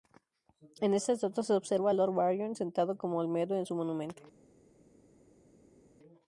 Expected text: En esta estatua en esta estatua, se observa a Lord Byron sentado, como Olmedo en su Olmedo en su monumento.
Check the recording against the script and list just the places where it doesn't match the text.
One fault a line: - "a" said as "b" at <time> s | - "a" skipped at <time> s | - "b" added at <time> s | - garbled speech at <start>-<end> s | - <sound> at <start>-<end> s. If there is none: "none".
- "en esta estatua" skipped at 1.4 s
- "Olmedo en su" skipped at 3.7 s